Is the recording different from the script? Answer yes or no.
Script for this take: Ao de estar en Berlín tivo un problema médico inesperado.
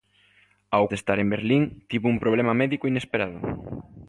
no